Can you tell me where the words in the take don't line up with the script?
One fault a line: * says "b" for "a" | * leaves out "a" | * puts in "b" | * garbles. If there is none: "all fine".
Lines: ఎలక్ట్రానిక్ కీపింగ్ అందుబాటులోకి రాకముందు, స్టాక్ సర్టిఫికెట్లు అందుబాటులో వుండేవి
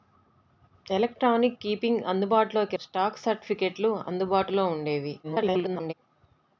* leaves out "రాకముందు"
* garbles